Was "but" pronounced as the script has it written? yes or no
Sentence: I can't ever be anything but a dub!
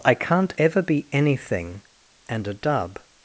no